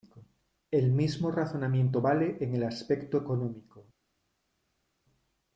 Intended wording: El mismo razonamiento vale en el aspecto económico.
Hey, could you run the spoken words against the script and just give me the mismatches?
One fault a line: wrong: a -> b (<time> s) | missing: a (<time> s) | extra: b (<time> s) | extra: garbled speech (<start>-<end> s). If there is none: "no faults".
no faults